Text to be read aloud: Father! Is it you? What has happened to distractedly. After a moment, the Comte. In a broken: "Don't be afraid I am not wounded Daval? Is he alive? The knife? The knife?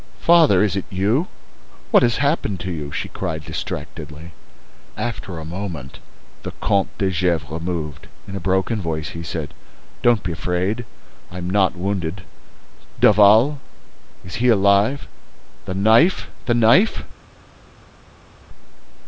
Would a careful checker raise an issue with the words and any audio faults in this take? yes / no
yes